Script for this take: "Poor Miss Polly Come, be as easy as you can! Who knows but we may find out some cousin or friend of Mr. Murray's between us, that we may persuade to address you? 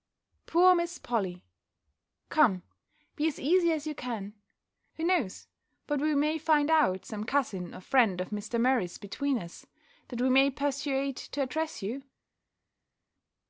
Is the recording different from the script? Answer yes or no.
no